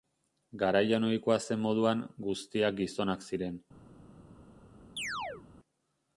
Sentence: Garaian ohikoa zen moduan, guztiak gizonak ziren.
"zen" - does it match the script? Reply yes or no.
yes